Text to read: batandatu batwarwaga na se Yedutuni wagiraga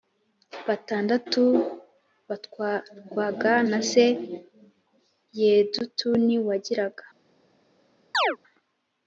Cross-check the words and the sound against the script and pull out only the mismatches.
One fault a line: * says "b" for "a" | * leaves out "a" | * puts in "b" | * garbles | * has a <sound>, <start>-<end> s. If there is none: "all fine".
* has a chirp, 8.1-8.4 s